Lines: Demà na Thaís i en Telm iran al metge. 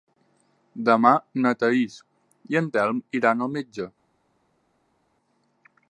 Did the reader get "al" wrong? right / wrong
right